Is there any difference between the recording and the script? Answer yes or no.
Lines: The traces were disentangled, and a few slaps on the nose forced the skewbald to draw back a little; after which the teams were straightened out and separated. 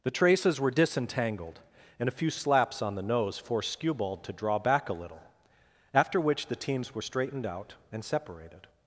yes